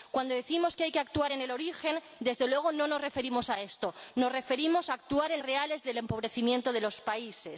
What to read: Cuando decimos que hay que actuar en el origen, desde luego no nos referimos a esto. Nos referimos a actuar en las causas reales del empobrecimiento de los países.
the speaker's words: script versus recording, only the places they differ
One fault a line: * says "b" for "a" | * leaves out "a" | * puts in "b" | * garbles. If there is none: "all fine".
* leaves out "las causas"